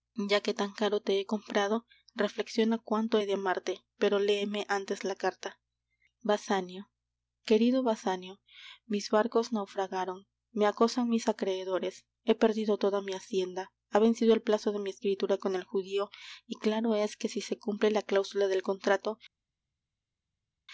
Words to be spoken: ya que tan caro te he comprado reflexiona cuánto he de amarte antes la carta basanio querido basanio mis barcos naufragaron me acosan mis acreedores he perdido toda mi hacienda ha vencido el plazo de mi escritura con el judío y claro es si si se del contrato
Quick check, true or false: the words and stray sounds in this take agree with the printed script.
false